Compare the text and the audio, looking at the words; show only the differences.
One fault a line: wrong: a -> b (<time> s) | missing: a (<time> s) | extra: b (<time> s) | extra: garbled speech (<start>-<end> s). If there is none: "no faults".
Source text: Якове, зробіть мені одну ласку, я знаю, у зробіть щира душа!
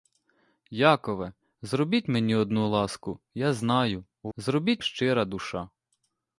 no faults